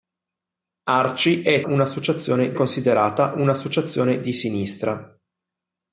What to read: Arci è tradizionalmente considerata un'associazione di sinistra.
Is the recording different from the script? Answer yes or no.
yes